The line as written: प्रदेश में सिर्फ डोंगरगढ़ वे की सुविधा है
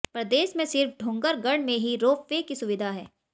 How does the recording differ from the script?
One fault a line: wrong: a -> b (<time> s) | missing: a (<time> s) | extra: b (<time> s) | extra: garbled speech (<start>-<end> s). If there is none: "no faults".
extra: में ही रोप (1.6 s)